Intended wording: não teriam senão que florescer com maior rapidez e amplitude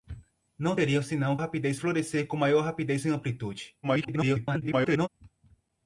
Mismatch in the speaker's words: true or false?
true